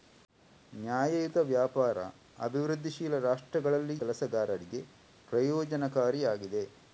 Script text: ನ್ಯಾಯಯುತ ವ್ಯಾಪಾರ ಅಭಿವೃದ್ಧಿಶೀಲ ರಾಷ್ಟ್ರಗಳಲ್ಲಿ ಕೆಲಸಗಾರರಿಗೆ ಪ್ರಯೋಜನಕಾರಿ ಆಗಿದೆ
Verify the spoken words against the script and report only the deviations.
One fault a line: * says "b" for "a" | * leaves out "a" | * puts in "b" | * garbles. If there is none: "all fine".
all fine